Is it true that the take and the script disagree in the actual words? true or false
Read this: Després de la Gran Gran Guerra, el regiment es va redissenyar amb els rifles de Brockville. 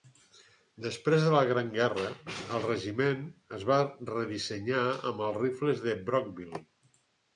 true